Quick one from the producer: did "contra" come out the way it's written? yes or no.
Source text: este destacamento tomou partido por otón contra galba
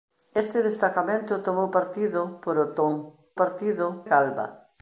no